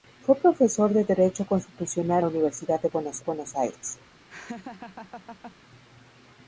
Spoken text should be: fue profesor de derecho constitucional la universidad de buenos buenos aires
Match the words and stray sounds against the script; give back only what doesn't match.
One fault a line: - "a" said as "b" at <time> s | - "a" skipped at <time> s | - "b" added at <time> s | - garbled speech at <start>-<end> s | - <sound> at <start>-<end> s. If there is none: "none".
- laugh at 4.3-5.5 s